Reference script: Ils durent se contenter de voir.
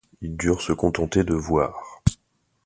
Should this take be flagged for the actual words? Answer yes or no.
no